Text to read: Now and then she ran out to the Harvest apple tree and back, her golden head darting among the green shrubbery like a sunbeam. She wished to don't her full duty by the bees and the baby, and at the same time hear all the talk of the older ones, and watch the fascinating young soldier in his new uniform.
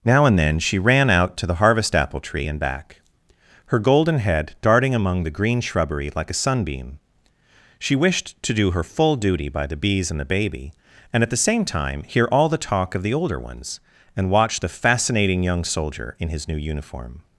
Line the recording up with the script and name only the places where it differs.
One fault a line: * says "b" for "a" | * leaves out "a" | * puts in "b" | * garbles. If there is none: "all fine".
* says "do" for "don't"